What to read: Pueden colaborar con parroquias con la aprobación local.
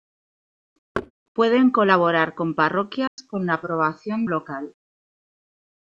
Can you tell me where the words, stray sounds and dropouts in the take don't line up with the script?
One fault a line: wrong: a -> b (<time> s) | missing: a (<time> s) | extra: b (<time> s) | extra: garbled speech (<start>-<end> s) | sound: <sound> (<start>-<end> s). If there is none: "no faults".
sound: thud (0.9-1.1 s)
sound: dropout (3.1-3.2 s)